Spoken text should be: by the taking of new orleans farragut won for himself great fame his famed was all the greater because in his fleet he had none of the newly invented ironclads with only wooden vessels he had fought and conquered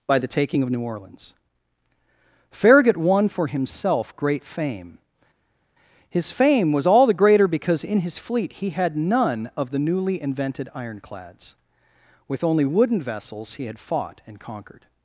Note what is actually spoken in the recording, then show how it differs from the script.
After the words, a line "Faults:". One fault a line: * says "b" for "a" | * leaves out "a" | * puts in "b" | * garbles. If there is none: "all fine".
by the taking of new orleans farragut won for himself great fame his fame was all the greater because in his fleet he had none of the newly invented ironclads with only wooden vessels he had fought and conquered
Faults:
* says "fame" for "famed"